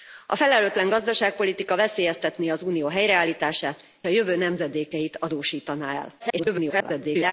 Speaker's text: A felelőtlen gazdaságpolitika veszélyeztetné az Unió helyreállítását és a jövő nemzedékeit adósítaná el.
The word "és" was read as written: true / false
false